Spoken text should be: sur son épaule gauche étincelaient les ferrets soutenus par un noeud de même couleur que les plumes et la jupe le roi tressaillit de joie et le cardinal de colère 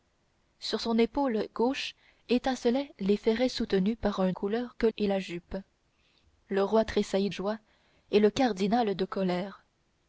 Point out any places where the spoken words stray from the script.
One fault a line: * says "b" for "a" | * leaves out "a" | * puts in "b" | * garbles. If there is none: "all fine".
* leaves out "noeud de même"
* leaves out "les plumes"
* leaves out "de"